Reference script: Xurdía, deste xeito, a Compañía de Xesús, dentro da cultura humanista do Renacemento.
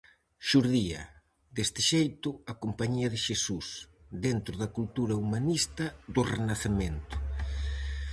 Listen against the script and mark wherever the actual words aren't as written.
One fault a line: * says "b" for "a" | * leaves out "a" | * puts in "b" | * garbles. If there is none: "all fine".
all fine